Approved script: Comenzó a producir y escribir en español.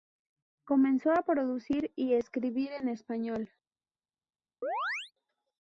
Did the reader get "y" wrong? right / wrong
right